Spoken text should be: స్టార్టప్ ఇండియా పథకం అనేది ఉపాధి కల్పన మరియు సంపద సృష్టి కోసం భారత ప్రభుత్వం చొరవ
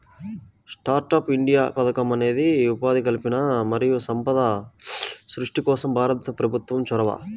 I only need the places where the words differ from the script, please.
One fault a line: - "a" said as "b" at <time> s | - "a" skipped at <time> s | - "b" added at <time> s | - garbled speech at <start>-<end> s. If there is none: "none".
none